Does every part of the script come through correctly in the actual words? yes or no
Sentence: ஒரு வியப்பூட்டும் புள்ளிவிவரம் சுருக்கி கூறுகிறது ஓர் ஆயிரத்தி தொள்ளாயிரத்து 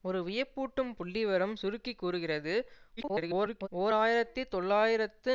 no